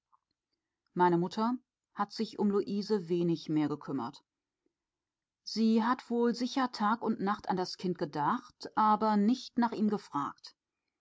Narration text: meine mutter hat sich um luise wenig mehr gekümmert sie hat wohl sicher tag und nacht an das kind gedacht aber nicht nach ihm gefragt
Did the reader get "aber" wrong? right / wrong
right